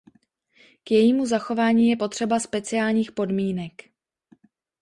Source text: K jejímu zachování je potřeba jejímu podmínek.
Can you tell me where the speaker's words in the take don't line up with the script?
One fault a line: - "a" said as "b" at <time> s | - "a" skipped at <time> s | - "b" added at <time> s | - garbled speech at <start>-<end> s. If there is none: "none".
- "jejímu" said as "speciálních" at 2.4 s